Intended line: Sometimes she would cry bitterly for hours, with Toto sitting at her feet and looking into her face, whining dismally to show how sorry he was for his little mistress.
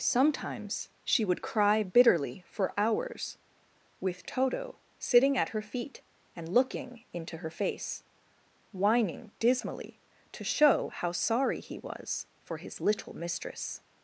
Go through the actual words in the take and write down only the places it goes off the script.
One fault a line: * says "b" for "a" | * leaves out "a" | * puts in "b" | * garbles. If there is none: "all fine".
all fine